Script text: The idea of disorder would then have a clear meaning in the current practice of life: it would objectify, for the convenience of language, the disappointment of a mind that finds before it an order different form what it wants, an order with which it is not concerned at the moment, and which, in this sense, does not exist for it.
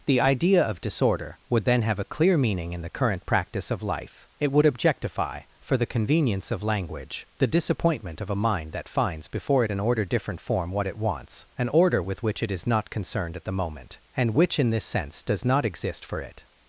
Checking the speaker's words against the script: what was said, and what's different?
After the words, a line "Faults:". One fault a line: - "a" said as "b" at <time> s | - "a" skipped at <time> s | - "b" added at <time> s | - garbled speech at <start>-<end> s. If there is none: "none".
The idea of disorder would then have a clear meaning in the current practice of life: it would objectify, for the convenience of language, the disappointment of a mind that finds before it an order different form what it wants, an order with which it is not concerned at the moment, and which, in this sense, does not exist for it.
Faults:
none